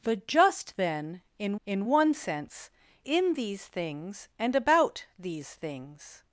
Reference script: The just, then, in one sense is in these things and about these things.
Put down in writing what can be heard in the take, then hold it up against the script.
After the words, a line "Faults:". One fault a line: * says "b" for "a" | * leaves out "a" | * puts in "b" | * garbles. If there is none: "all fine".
The just, then, in in one sense in these things and about these things.
Faults:
* puts in "in"
* leaves out "is"